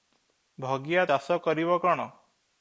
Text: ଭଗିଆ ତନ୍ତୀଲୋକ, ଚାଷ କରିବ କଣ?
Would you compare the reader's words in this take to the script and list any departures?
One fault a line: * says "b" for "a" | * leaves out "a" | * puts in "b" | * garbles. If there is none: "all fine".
* leaves out "ତନ୍ତୀଲୋକ"